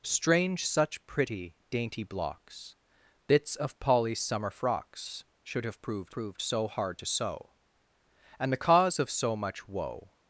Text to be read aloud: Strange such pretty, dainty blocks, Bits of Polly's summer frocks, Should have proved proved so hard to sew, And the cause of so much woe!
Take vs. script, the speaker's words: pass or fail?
pass